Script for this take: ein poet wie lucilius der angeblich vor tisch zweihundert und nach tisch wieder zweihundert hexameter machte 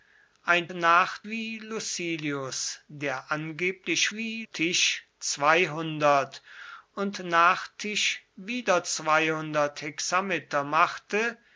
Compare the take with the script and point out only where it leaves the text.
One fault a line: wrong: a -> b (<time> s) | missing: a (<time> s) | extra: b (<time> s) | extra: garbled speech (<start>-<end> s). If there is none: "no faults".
wrong: poet -> nach (0.7 s)
wrong: vor -> wie (4.1 s)